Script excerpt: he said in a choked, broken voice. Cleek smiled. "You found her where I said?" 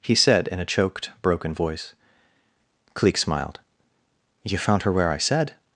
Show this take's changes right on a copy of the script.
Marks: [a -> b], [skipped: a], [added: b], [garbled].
he said in a choked, broken voice. Cleek smiled. "You found her where I said?"